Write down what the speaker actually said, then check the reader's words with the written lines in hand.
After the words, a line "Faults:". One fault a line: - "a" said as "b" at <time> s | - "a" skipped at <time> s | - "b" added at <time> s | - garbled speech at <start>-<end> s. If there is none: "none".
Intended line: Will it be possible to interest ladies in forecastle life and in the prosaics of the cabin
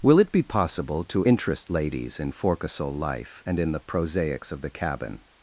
Will it be possible to interest ladies in forecastle life and in the prosaics of the cabin
Faults:
none